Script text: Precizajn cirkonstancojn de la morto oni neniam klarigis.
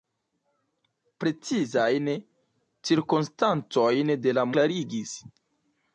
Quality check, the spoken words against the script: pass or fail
fail